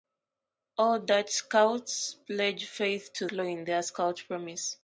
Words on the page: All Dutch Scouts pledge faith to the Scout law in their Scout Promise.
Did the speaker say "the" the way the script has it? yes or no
no